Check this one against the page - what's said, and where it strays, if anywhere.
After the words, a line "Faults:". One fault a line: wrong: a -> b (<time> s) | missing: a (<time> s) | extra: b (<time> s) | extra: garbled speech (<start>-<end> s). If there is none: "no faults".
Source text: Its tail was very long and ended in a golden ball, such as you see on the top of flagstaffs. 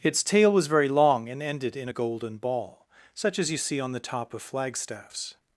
Its tail was very long and ended in a golden ball, such as you see on the top of flagstaffs.
Faults:
no faults